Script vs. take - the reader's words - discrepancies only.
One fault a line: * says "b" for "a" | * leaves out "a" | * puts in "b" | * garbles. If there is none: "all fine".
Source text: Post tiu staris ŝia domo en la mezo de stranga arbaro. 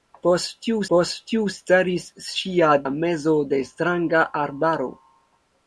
* puts in "post tiu"
* leaves out "domo en"